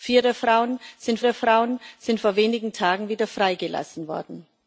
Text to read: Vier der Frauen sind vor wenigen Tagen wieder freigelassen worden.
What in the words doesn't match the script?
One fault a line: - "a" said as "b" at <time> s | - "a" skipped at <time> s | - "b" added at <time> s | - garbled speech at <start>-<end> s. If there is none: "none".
- "der Frauen sind" added at 1.2 s